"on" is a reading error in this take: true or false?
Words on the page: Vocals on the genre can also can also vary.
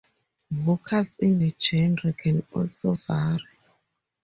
true